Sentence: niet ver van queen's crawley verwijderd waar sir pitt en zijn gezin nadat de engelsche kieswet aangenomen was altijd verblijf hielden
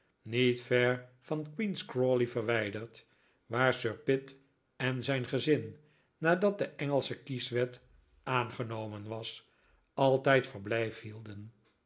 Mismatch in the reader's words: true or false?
false